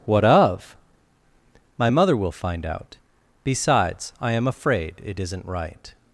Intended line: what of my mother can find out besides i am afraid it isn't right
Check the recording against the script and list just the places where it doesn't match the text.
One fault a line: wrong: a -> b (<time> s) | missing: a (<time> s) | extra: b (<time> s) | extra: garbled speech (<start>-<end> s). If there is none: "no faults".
wrong: can -> will (2.2 s)